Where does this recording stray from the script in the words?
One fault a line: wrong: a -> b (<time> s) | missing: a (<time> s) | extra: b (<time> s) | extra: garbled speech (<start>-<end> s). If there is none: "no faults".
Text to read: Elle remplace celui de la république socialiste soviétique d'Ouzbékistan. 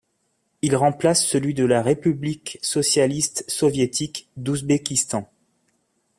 wrong: Elle -> Il (0.6 s)